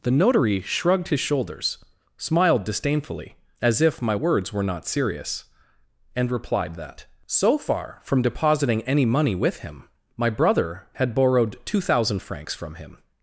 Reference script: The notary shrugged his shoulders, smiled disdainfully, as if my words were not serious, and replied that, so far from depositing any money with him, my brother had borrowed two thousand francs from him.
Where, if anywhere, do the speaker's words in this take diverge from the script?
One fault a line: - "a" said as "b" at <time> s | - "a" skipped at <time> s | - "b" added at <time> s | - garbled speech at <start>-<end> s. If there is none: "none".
none